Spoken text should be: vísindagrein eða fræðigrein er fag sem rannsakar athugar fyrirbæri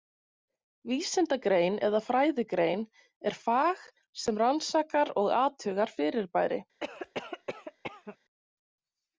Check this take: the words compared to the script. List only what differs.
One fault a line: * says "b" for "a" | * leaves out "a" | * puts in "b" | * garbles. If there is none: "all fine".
* puts in "og"